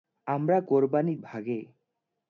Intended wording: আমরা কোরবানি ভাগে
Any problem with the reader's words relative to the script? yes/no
no